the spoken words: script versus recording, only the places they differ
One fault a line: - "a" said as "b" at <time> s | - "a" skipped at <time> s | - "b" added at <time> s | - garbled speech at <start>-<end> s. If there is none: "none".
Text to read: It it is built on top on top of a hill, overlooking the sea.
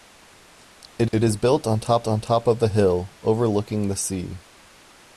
none